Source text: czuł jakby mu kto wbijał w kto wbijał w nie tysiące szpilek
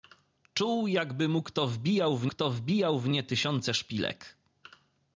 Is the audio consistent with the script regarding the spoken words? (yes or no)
yes